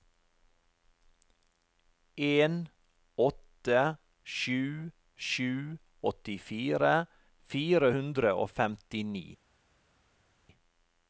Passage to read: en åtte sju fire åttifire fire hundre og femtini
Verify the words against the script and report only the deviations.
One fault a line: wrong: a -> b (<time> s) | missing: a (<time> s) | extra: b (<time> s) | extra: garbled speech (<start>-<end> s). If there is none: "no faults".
wrong: fire -> sju (5.2 s)